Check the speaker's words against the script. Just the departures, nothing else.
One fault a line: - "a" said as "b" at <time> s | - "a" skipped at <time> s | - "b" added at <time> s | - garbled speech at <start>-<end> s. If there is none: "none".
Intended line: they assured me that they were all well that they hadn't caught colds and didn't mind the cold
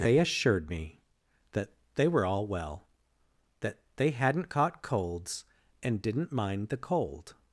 none